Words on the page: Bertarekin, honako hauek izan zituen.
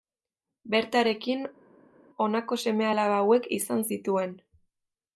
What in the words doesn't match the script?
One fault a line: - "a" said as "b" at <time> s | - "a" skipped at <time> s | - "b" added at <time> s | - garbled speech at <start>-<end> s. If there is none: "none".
- "seme alaba" added at 2.6 s